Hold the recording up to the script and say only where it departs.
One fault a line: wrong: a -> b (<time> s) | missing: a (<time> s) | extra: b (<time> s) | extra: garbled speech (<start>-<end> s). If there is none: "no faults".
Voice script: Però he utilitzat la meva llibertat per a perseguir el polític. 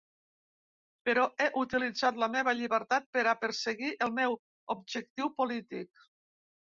extra: meu objectiu (4.2 s)